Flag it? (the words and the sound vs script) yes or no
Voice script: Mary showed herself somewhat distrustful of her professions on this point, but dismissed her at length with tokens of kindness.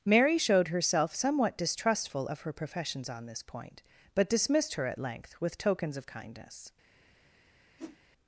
yes